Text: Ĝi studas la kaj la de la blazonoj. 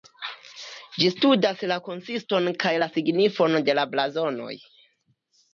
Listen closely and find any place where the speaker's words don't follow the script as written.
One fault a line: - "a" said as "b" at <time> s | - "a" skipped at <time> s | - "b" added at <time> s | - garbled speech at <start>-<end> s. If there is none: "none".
- "konsiston" added at 1.9 s
- "signifon" added at 3.0 s